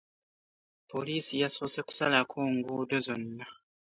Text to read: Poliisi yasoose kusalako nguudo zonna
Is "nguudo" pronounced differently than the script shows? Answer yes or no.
no